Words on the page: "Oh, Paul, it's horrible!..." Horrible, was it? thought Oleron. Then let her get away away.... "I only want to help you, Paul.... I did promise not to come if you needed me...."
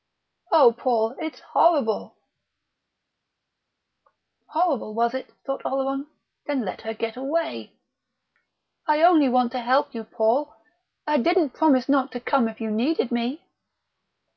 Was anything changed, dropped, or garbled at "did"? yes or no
yes